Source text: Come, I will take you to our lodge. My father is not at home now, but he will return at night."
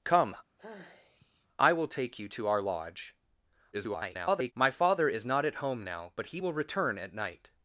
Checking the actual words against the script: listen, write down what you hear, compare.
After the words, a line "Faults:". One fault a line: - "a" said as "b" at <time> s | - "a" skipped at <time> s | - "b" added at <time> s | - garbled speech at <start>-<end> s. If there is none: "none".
Come, I will take you to our lodge. [garbled] My father is not at home now, but he will return at night."
Faults:
- garbled speech at 3.7-4.5 s